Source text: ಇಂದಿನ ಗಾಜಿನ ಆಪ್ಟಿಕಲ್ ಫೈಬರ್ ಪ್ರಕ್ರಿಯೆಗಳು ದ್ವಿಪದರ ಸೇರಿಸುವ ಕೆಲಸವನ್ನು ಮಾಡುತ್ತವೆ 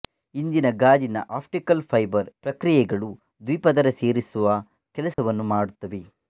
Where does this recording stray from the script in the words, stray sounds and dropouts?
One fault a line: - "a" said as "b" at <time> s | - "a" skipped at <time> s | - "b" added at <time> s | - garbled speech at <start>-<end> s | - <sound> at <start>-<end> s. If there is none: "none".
- dropout at 5.1-5.2 s